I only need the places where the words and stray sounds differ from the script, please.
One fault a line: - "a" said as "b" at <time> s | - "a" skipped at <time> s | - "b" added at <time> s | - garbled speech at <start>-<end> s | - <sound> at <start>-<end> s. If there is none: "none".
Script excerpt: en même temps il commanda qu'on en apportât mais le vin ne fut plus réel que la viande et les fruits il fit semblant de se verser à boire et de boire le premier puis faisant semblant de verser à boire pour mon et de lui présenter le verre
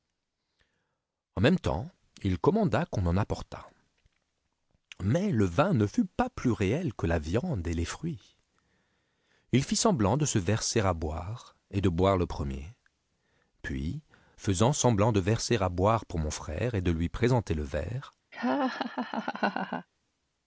- "pas" added at 6.0 s
- "frère" added at 16.3 s
- laugh at 18.3-19.9 s